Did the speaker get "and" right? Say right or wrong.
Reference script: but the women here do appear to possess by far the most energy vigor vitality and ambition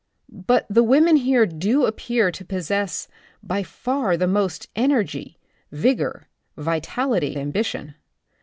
wrong